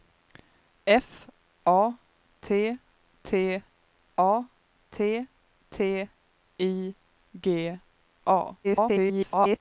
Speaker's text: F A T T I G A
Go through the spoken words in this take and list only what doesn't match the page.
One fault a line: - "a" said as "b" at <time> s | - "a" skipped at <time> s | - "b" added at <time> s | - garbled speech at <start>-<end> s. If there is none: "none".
- "A T T" added at 4.2 s
- garbled speech at 8.6-9.6 s